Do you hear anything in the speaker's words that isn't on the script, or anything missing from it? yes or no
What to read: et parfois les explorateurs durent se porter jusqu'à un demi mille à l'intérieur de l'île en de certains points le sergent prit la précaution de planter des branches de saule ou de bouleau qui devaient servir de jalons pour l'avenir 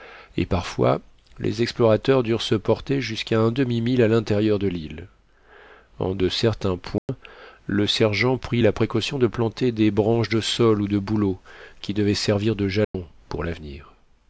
no